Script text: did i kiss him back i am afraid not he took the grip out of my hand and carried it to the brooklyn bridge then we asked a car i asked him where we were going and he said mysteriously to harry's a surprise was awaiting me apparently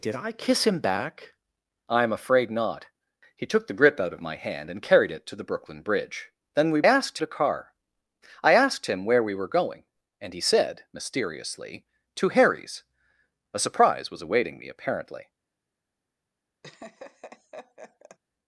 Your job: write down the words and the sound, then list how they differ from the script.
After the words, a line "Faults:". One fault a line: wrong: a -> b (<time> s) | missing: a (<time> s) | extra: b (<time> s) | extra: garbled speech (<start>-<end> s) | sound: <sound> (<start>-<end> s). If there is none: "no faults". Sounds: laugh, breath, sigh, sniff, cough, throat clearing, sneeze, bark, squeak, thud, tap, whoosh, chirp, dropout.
did i kiss him back i am afraid not he took the grip out of my hand and carried it to the brooklyn bridge then we asked a car i asked him where we were going and he said mysteriously to harry's a surprise was awaiting me apparently
Faults:
sound: laugh (16.6-18.2 s)